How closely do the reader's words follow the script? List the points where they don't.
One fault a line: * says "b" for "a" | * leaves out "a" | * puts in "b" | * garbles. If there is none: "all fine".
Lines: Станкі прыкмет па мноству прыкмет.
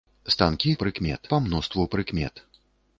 all fine